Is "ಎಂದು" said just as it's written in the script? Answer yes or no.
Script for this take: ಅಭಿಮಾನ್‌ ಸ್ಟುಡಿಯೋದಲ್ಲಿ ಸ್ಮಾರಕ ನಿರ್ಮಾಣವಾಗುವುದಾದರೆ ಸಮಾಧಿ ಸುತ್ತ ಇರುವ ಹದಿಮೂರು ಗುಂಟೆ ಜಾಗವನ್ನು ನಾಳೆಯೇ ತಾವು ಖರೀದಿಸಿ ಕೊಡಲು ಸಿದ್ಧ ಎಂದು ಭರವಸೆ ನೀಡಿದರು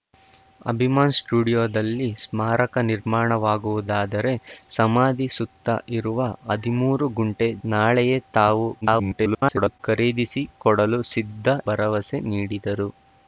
no